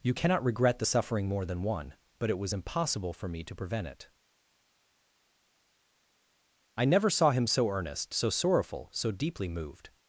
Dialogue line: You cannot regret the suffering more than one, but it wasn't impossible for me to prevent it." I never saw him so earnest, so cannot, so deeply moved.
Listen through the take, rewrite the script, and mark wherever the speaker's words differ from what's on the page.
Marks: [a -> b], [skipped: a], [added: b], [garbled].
You cannot regret the suffering more than one, but it [wasn't -> was] impossible for me to prevent it." I never saw him so earnest, so [cannot, -> sorrowful] so deeply moved.